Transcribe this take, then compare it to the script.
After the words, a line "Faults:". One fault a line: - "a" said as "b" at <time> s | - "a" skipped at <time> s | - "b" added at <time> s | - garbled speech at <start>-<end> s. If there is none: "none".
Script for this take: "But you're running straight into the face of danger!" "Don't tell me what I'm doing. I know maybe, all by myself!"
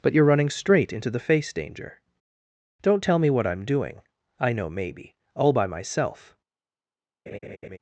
"But you're running straight into the face danger!" "Don't tell me what I'm doing. I know maybe, all by myself!"
Faults:
- "of" skipped at 1.5 s